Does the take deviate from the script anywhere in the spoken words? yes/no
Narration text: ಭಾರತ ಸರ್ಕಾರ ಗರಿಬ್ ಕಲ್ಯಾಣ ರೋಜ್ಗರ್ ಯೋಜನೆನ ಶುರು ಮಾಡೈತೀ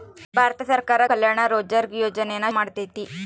yes